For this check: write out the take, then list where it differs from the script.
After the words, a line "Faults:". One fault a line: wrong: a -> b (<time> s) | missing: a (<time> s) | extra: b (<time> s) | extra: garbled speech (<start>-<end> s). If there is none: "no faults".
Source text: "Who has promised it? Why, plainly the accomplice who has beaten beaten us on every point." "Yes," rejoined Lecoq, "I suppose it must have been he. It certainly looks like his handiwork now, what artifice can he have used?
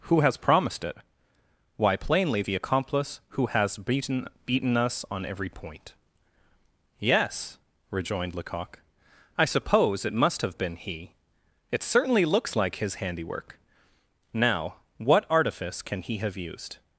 "Who has promised it? Why, plainly the accomplice who has beaten beaten us on every point." "Yes," rejoined Lecoq, "I suppose it must have been he. It certainly looks like his handiwork now, what artifice can he have used?
Faults:
no faults